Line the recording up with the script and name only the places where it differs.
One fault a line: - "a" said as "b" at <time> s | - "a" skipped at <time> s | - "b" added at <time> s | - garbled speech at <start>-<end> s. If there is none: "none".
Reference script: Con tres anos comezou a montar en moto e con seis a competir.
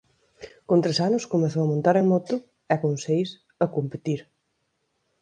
none